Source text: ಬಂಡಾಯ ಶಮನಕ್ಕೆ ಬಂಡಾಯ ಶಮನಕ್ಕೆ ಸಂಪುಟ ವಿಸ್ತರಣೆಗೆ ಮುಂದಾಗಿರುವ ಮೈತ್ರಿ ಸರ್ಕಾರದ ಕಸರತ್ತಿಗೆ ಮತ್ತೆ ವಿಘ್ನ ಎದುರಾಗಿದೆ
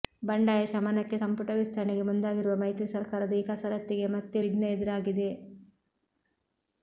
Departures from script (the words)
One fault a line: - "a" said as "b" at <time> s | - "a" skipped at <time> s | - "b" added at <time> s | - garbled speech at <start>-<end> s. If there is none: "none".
- "ಬಂಡಾಯ ಶಮನಕ್ಕೆ" skipped at 1.2 s
- "ಈ" added at 3.3 s